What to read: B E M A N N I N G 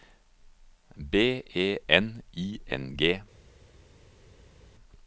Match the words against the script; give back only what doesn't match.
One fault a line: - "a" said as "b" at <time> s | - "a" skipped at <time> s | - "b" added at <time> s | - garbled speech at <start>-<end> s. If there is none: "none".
- "M A N" skipped at 1.8 s